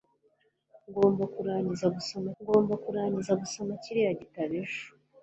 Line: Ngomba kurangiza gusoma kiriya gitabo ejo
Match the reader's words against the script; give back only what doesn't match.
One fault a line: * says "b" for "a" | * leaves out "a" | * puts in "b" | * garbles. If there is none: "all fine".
* puts in "ngomba kurangiza gusoma"